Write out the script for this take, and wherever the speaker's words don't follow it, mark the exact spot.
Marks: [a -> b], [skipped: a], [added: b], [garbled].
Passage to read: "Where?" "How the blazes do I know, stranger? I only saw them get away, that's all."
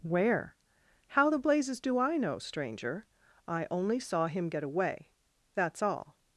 "Where?" "How the blazes do I know, stranger? I only saw [them -> him] get away, that's all."